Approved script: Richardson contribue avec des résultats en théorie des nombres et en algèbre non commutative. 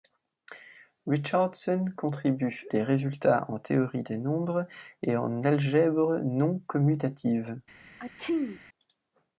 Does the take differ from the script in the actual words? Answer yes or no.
yes